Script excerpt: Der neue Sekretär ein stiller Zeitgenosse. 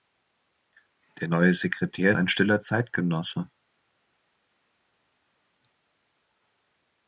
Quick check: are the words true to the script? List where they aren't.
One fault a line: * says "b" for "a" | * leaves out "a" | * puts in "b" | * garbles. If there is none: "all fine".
all fine